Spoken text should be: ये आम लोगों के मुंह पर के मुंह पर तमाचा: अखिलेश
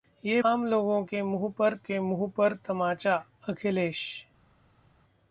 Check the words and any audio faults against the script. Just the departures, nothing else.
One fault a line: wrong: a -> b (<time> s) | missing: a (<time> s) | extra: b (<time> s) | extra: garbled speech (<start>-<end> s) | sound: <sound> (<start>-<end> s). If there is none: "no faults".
no faults